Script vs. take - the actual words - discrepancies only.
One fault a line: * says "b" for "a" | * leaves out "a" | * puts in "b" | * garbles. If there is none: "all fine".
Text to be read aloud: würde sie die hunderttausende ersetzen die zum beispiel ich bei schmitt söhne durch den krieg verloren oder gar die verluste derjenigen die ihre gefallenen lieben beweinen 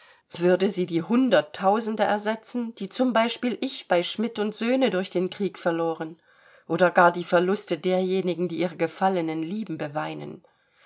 all fine